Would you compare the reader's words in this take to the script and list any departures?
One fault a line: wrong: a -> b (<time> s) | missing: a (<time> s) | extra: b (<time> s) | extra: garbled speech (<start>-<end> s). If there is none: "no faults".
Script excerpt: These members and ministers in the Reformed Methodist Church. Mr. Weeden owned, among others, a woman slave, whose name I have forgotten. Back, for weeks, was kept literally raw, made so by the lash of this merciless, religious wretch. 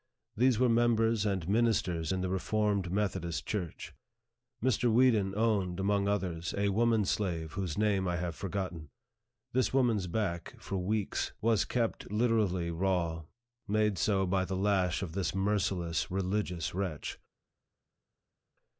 extra: were (0.6 s)
extra: This woman's (9.5 s)